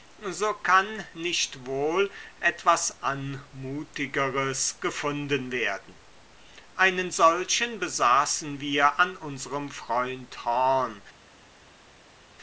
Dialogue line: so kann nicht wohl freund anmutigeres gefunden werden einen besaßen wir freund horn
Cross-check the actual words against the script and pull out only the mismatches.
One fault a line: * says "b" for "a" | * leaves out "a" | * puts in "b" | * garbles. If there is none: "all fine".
* says "etwas" for "freund"
* puts in "solchen"
* puts in "an unserem"